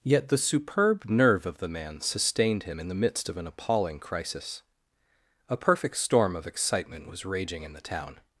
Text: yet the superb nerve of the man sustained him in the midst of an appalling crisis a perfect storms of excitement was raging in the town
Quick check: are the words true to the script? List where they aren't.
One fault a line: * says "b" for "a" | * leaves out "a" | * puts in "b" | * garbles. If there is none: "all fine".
* says "storm" for "storms"